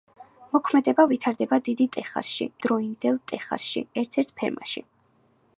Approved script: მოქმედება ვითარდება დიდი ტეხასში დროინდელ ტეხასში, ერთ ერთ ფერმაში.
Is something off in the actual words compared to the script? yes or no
no